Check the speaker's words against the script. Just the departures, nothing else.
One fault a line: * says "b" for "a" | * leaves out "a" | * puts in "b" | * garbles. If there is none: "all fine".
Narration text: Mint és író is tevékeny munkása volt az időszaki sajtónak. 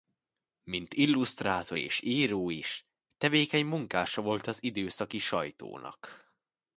* puts in "illusztrátor"